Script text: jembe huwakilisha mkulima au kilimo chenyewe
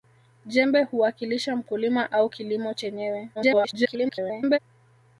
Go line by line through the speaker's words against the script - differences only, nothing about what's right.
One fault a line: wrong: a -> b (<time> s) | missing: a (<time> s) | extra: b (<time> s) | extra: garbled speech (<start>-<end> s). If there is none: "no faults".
extra: garbled speech (3.3-4.6 s)